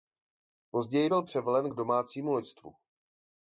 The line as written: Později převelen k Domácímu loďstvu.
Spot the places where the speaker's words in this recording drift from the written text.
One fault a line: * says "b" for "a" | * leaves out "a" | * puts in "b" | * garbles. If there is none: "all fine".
* puts in "byl"